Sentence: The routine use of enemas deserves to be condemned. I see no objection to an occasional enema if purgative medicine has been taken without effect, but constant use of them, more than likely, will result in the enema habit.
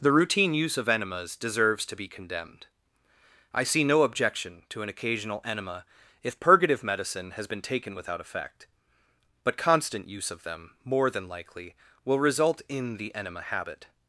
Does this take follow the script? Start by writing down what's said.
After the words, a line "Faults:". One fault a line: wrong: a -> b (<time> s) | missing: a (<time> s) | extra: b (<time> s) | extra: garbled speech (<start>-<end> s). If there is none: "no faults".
The routine use of enemas deserves to be condemned. I see no objection to an occasional enema if purgative medicine has been taken without effect, but constant use of them, more than likely, will result in the enema habit.
Faults:
no faults